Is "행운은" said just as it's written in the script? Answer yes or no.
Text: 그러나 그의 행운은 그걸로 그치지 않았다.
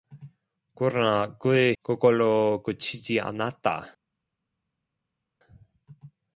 no